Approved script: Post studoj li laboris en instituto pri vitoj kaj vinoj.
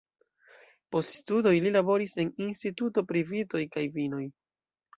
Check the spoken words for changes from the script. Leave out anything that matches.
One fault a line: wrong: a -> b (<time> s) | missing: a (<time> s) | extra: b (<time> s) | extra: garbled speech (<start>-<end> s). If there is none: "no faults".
no faults